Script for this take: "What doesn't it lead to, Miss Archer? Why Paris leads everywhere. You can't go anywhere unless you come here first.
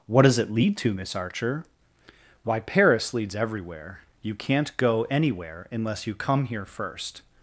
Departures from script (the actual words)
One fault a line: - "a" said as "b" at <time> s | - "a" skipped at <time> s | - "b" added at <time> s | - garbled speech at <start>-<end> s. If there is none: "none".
- "doesn't" said as "does" at 0.2 s